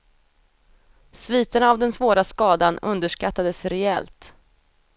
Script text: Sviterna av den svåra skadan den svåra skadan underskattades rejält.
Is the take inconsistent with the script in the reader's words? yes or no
yes